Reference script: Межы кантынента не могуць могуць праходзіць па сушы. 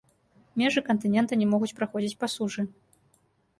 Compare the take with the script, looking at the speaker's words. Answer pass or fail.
fail